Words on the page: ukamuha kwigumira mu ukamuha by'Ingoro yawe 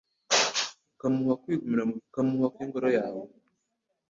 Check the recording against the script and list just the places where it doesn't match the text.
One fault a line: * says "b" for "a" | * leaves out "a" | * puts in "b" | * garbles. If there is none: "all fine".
all fine